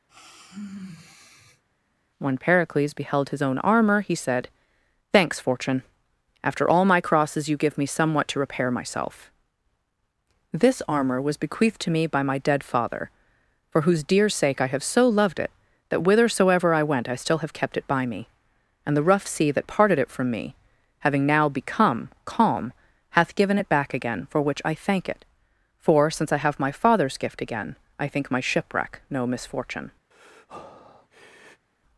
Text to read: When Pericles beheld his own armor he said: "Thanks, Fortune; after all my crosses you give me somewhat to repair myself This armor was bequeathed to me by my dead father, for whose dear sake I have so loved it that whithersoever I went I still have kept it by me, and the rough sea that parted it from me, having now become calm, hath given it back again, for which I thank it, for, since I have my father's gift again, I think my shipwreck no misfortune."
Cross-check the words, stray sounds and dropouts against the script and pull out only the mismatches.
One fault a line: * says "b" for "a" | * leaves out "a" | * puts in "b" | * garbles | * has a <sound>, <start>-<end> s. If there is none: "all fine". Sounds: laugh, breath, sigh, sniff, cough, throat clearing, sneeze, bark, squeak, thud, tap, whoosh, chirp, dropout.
* has a sigh, 0.1-1.6 s
* has a breath, 30.1-31.7 s